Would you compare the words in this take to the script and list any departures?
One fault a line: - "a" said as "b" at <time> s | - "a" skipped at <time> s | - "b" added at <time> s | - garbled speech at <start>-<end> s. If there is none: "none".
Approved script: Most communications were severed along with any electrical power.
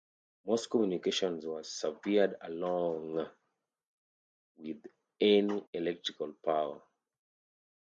none